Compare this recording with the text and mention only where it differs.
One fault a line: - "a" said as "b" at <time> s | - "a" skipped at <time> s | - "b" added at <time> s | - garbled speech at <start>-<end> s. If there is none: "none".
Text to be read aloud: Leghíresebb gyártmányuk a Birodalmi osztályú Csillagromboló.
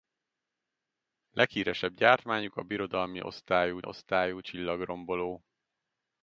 - "osztályú" added at 3.8 s